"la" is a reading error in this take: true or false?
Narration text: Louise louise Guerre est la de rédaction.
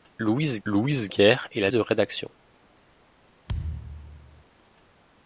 false